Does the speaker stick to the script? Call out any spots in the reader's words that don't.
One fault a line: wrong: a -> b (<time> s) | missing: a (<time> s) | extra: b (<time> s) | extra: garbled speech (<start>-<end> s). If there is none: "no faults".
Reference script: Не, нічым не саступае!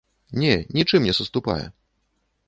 no faults